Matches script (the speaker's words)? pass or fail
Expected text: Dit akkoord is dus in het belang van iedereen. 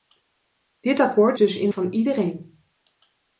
fail